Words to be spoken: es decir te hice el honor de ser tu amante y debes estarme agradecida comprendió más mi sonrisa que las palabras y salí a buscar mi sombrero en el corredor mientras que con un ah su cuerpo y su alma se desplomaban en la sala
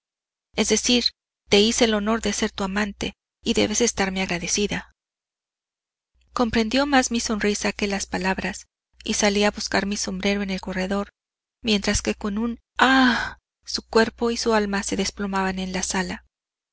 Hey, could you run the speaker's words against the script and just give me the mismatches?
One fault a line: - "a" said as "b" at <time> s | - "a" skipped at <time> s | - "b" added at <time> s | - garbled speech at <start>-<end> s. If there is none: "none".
none